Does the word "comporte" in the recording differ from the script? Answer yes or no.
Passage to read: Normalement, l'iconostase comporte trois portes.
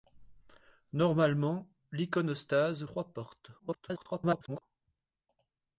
yes